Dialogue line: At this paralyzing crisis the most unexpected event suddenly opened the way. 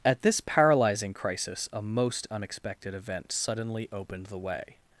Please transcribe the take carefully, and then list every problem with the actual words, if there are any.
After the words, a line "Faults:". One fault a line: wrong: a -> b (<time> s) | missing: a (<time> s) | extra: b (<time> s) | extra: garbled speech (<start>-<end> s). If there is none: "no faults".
At this paralyzing crisis a most unexpected event suddenly opened the way.
Faults:
wrong: the -> a (1.7 s)